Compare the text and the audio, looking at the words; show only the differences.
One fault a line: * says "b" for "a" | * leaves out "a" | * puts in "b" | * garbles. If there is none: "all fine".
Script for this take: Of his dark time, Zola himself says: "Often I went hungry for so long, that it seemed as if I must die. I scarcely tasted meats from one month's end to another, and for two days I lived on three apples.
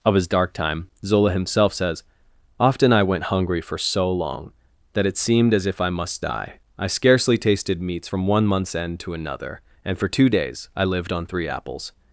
all fine